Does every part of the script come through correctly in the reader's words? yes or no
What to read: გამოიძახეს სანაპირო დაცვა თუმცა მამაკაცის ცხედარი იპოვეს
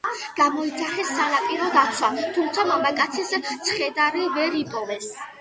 no